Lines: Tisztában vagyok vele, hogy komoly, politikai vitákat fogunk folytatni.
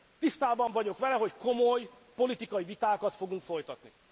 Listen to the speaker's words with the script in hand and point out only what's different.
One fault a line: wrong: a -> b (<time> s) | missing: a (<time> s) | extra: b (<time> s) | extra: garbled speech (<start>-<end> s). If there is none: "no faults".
no faults